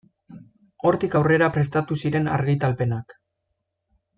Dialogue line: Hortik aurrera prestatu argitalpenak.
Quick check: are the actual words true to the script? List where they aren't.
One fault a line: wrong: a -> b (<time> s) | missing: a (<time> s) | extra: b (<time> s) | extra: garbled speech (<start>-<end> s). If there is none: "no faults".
extra: ziren (2.0 s)